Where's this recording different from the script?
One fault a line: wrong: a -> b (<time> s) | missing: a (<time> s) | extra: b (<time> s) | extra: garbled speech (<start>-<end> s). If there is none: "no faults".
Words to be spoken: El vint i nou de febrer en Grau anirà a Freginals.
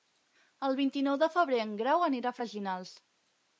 no faults